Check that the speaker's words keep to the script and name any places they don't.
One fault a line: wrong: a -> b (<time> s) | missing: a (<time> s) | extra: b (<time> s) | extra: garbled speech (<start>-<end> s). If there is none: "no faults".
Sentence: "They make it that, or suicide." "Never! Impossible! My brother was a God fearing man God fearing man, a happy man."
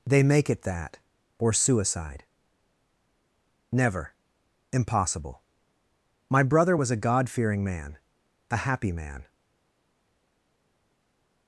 missing: God fearing man (8.0 s)